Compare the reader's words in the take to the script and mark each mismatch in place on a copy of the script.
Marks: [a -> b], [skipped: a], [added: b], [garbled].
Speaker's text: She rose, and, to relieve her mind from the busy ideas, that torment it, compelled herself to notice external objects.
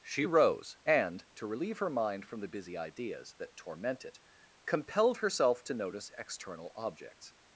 She rose, and, to relieve her mind from the busy ideas, that torment it, compelled herself to notice external objects.